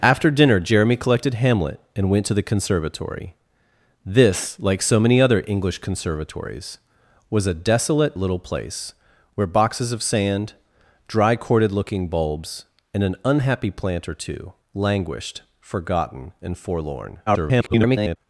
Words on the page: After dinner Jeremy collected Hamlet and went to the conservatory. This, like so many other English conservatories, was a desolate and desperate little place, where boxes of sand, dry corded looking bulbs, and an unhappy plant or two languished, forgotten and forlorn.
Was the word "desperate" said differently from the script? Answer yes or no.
yes